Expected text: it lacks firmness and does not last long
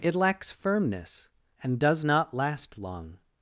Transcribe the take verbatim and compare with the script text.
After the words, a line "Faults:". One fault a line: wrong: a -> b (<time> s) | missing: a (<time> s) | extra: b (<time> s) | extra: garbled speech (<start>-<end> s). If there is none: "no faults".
it lacks firmness and does not last long
Faults:
no faults